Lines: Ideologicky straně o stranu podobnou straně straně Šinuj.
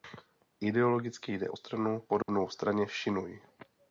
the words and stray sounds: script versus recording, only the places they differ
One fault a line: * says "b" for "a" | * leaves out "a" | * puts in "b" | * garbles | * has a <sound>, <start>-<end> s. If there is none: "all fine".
* says "jde" for "straně"
* has a dropout, 2.2-2.3 s
* leaves out "straně"